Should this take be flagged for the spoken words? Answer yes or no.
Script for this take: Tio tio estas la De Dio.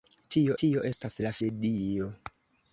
no